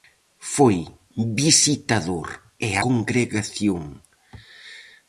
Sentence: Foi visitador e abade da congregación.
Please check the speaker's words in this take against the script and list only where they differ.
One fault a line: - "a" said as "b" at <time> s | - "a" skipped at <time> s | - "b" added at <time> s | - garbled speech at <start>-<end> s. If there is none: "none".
- "abade da" skipped at 2.7 s